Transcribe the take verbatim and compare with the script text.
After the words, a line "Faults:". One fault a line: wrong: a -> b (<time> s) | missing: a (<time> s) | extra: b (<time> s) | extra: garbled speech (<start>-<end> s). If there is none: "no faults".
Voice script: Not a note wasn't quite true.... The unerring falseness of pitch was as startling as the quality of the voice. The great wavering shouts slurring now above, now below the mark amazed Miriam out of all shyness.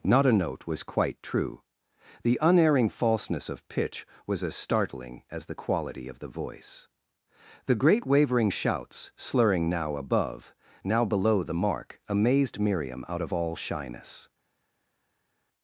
Not a note was quite true.... The unerring falseness of pitch was as startling as the quality of the voice. The great wavering shouts slurring now above, now below the mark amazed Miriam out of all shyness.
Faults:
wrong: wasn't -> was (0.7 s)